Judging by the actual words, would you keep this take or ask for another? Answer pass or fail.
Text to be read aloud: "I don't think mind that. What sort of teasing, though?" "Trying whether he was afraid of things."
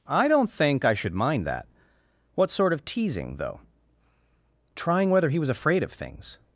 fail